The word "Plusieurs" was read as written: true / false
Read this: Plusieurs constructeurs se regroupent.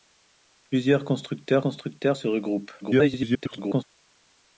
true